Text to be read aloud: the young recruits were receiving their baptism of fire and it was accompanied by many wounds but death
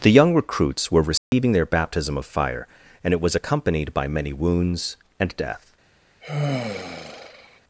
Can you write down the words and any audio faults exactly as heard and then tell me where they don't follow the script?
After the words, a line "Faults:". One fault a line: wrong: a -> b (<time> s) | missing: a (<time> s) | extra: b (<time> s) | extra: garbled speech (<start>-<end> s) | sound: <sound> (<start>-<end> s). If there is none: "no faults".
the young recruits were receiving their baptism of fire and it was accompanied by many wounds and death
Faults:
sound: dropout (1.2-1.3 s)
wrong: but -> and (5.2 s)
sound: sigh (6.2-7.6 s)